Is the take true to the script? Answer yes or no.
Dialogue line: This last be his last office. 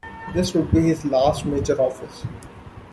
no